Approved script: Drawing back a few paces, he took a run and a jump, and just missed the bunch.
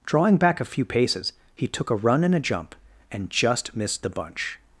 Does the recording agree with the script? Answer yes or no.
yes